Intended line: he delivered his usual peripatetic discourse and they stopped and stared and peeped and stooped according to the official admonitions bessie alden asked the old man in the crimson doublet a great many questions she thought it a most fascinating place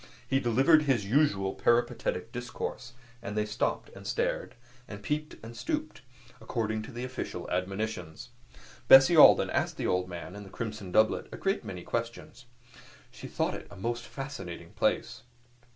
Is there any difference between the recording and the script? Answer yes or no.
no